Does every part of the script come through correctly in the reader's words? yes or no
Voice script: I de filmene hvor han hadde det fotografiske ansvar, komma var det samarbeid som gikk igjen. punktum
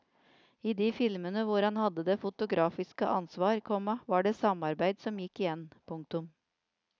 yes